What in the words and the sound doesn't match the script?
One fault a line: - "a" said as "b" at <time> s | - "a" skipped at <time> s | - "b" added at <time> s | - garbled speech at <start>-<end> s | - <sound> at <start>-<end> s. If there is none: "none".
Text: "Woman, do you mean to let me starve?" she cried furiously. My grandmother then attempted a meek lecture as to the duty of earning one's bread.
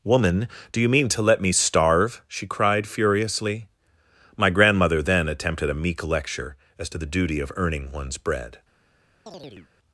- chirp at 9.3-9.7 s